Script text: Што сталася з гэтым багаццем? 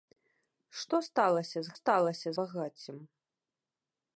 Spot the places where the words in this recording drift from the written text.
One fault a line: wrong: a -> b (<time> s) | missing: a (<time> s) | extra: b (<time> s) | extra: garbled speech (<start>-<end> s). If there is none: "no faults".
wrong: гэтым -> сталася (1.8 s)